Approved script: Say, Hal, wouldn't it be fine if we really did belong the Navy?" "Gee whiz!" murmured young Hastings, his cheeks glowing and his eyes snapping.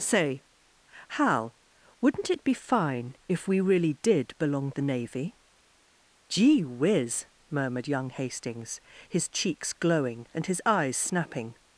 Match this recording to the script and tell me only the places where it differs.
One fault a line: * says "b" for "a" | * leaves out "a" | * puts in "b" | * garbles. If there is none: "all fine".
all fine